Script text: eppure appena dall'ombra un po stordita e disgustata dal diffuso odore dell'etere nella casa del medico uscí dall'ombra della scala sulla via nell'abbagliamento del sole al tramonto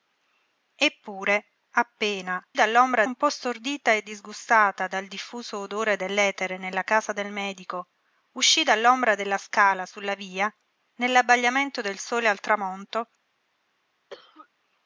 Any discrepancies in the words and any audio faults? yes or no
yes